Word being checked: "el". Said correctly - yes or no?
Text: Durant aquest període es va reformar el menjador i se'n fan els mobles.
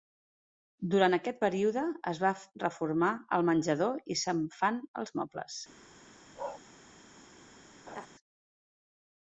yes